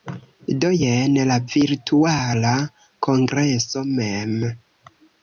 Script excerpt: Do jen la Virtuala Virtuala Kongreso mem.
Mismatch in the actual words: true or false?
true